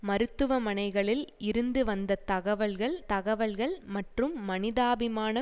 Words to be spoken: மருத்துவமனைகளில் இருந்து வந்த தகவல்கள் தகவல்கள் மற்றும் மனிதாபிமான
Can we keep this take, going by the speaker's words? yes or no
yes